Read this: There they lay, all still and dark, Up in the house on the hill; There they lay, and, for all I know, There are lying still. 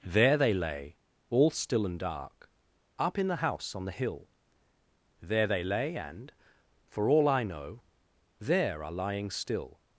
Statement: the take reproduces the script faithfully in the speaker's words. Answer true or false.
true